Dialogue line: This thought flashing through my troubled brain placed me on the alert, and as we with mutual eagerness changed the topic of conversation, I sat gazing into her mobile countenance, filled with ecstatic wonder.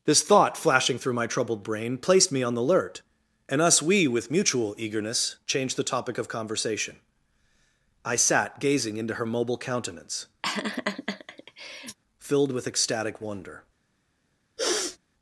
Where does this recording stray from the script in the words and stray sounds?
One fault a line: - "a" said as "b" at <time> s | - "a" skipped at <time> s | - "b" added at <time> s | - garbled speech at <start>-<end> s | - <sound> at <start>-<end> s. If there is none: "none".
- "as" said as "us" at 3.6 s
- laugh at 10.4-12.0 s
- sniff at 14.6-15.0 s